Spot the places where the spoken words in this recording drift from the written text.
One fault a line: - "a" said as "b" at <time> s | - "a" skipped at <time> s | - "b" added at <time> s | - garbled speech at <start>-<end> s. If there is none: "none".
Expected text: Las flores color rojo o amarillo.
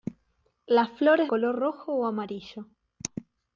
none